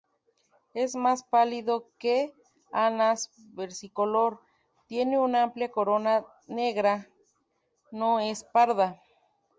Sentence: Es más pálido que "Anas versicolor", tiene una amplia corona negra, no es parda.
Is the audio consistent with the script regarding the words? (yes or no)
yes